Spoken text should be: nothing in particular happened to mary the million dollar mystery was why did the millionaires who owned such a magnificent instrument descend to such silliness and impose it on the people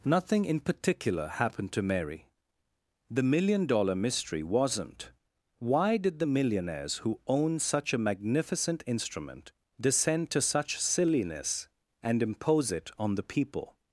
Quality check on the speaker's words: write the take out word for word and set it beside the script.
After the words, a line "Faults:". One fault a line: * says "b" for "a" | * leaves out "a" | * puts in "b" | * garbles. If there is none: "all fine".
nothing in particular happened to mary the million dollar mystery wasn't why did the millionaires who own such a magnificent instrument descend to such silliness and impose it on the people
Faults:
* says "wasn't" for "was"
* says "own" for "owned"